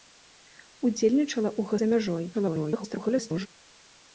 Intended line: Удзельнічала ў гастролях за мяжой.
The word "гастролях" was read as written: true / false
false